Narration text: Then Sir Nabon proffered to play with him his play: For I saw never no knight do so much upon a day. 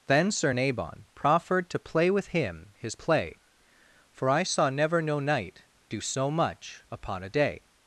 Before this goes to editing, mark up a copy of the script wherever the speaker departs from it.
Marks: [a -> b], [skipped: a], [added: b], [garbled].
Then Sir Nabon proffered to play with him his play: For I saw never no knight do so much upon a day.